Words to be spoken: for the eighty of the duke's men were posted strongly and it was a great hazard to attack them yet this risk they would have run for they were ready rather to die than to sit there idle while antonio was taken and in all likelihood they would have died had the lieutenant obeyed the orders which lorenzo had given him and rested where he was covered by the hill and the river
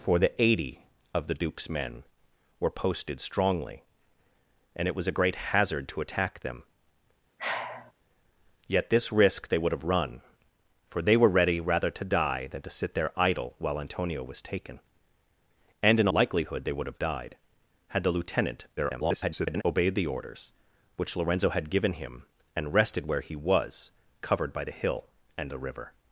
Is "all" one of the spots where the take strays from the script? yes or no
yes